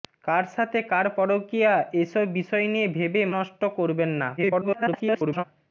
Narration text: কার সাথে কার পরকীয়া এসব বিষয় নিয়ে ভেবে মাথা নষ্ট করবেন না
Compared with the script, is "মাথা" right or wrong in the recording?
wrong